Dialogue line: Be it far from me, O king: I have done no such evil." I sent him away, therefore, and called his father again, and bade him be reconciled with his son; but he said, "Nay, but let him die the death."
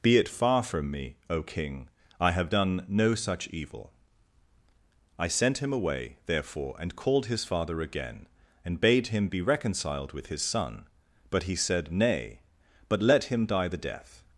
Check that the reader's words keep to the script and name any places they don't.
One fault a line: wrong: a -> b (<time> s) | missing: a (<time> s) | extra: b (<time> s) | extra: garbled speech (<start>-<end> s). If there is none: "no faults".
no faults